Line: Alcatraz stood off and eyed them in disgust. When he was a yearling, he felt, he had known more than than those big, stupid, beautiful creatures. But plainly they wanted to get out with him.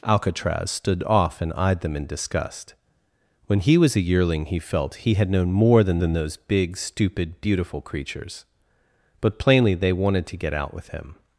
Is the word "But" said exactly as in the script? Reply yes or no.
yes